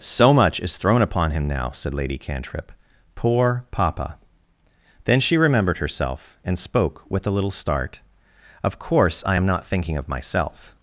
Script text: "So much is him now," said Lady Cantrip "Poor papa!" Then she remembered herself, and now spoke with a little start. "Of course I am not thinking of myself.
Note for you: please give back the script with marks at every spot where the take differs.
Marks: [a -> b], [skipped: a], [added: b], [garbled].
"So much is [added: thrown upon] him now," said Lady Cantrip "Poor papa!" Then she remembered herself, and [skipped: now] spoke with a little start. "Of course I am not thinking of myself.